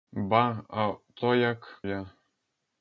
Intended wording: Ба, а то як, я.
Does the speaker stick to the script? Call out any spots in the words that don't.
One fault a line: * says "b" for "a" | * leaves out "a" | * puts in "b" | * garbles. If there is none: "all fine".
all fine